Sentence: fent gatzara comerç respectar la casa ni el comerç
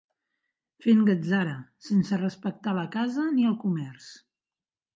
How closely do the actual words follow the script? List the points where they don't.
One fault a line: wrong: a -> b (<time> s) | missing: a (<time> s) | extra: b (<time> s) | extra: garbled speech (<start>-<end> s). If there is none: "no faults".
wrong: comerç -> sense (1.9 s)